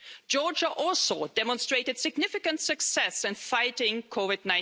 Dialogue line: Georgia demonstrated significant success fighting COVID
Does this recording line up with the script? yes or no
no